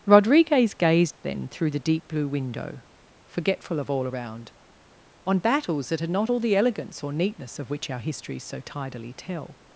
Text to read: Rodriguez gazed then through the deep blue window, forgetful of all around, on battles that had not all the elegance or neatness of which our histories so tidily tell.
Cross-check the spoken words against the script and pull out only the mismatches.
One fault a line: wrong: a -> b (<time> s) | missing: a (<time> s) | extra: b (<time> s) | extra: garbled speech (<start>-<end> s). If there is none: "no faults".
no faults